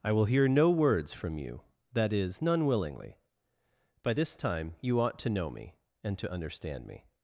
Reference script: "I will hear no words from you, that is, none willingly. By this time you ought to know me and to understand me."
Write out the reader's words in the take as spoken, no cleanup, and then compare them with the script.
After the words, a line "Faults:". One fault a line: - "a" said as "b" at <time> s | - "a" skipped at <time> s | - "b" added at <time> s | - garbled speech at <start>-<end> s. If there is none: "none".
"I will hear no words from you, that is, none willingly. By this time you ought to know me and to understand me."
Faults:
none